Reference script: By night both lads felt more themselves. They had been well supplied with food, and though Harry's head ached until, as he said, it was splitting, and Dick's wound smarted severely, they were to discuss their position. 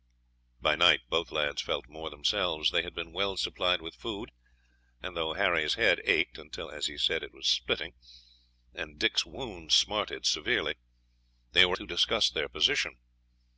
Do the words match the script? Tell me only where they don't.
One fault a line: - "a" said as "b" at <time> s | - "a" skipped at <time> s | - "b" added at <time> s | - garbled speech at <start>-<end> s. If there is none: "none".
none